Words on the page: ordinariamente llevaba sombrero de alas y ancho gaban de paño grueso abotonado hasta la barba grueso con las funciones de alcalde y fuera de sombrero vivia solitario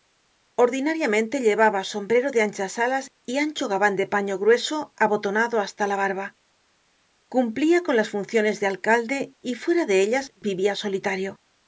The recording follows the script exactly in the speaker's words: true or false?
false